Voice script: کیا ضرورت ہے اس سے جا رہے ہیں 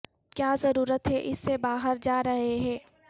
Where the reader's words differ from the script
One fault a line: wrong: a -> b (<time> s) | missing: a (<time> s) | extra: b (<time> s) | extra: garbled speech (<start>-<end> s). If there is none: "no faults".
extra: باہر (1.6 s)